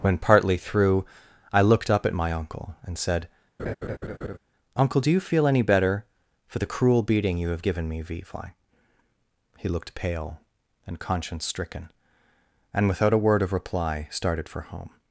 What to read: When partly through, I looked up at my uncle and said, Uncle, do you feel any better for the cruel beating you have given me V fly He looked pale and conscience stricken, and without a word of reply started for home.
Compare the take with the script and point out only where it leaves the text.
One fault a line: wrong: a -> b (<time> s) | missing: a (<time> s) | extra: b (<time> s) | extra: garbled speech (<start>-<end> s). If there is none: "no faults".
no faults